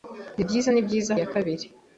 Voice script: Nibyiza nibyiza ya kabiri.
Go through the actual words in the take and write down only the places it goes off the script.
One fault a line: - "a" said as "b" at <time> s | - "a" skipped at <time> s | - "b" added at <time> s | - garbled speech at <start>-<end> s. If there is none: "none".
none